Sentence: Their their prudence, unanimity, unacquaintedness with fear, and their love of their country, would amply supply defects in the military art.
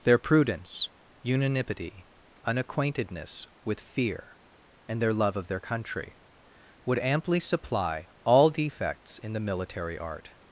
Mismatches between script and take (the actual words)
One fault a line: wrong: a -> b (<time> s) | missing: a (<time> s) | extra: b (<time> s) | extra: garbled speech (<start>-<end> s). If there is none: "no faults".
missing: their (0.2 s)
extra: all (8.2 s)